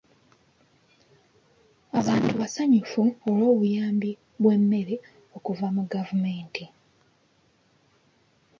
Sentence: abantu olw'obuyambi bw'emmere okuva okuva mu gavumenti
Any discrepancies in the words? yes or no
yes